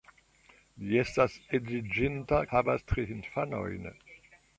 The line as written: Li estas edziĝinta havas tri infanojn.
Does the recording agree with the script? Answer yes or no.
yes